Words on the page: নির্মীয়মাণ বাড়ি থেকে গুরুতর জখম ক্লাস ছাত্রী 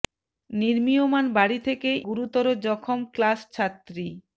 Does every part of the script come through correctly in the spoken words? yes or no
yes